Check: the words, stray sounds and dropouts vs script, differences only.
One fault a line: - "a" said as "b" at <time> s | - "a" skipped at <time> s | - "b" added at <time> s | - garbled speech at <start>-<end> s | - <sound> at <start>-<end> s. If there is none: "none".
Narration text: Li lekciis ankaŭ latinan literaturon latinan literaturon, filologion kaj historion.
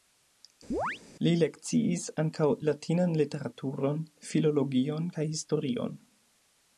- chirp at 0.7-1.0 s
- "latinan literaturon" skipped at 4.0 s